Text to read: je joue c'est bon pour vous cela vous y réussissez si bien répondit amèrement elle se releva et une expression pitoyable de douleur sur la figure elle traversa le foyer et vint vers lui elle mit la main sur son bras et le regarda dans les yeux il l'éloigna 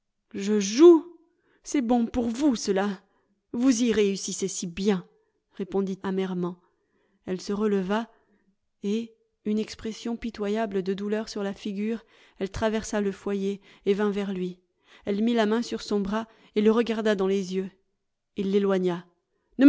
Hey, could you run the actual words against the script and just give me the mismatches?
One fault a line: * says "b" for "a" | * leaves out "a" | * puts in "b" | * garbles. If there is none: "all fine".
all fine